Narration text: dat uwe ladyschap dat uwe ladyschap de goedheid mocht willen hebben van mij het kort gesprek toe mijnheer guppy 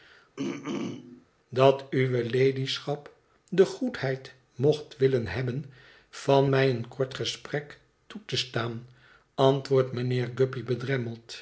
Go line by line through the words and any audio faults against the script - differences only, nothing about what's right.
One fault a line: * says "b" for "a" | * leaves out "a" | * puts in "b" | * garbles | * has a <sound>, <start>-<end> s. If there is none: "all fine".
* has a throat clearing, 0.4-1.3 s
* leaves out "dat uwe ladyschap"
* says "een" for "het"
* puts in "te staan antwoordt"